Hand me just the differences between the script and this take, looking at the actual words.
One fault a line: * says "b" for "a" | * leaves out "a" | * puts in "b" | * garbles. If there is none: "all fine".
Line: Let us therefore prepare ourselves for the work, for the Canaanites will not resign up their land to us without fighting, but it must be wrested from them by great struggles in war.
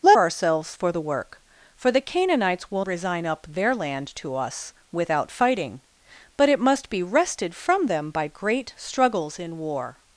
* leaves out "us therefore prepare"
* leaves out "not"